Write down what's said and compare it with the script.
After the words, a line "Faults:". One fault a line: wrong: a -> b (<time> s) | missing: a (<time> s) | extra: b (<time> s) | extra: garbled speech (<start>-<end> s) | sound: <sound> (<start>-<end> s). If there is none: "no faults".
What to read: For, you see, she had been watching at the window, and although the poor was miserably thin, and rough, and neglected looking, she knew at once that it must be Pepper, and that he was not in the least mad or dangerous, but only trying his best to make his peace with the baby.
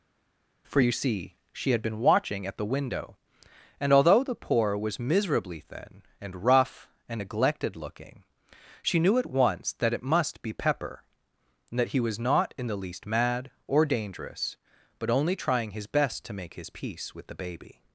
For, you see, she had been watching at the window, and although the poor was miserably thin, and rough, and neglected looking, she knew at once that it must be Pepper, and that he was not in the least mad or dangerous, but only trying his best to make his peace with the baby.
Faults:
no faults